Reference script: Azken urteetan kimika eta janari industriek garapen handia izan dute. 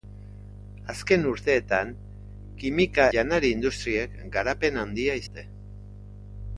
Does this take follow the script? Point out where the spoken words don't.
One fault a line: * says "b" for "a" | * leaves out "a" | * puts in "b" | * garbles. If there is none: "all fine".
* leaves out "eta"
* leaves out "izan"